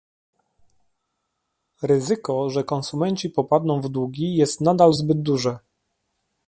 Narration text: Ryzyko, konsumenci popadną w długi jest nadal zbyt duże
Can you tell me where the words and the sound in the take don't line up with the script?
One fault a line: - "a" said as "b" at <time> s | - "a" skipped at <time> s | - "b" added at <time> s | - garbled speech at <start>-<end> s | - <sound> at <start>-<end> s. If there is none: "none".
- "że" added at 2.5 s